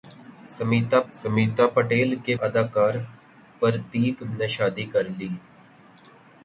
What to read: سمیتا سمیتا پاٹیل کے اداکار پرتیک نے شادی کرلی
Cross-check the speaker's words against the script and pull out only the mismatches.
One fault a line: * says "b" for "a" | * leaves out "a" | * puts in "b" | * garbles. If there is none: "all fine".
all fine